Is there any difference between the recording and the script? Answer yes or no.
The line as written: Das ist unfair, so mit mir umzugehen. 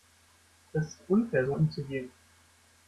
yes